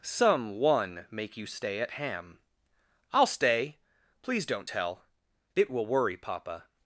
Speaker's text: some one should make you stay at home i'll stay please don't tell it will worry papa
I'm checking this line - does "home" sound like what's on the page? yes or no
no